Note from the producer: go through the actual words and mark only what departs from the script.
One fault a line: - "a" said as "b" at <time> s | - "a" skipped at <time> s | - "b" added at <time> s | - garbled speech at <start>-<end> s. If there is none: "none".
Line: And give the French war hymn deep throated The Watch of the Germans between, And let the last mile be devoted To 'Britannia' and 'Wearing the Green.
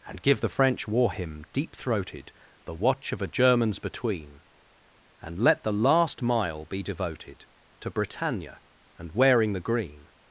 - "the" said as "a" at 3.2 s